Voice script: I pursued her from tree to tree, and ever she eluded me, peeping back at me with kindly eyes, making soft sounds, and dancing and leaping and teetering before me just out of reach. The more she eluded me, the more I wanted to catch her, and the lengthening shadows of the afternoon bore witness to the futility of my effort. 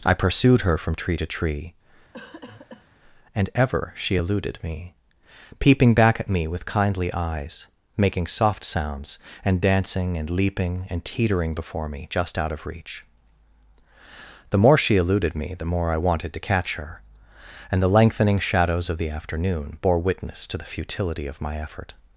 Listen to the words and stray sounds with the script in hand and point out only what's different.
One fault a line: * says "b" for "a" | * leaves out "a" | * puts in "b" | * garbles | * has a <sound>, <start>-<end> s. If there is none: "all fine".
* has a cough, 2.1-2.9 s